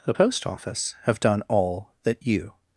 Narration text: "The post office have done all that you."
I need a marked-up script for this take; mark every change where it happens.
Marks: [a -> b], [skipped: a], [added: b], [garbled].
"The post office have done all that you."